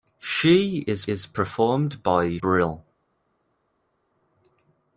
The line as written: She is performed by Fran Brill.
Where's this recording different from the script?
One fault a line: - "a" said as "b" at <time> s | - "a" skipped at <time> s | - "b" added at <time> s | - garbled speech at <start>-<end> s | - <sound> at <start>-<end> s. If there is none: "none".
- "is" added at 1.1 s
- "Fran" skipped at 2.4 s